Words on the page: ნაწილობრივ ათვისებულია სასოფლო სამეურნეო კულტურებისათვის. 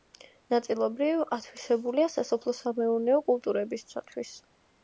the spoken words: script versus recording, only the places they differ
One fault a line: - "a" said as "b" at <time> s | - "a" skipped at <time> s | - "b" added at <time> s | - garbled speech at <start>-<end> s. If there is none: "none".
none